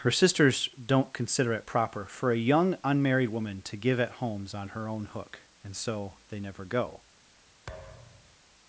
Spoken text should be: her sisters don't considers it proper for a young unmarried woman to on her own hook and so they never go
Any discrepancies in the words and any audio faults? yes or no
yes